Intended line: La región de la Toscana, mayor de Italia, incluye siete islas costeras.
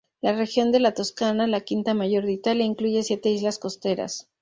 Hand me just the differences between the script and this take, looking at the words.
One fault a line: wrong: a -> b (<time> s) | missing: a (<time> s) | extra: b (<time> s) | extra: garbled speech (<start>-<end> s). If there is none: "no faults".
extra: la quinta (1.4 s)